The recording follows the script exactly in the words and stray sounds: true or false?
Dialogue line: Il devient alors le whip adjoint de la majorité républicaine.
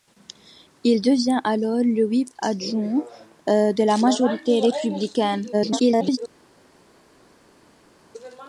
false